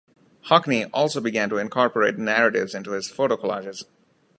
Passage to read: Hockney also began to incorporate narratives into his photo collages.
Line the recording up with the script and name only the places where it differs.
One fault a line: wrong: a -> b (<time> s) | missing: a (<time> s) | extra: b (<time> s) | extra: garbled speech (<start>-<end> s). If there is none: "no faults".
no faults